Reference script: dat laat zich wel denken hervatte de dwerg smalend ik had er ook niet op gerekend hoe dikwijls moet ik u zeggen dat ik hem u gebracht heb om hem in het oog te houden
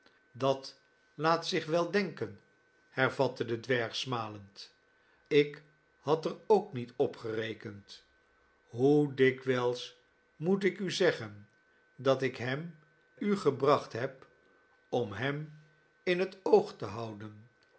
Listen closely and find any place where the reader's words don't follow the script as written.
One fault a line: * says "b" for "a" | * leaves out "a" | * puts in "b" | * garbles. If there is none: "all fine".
all fine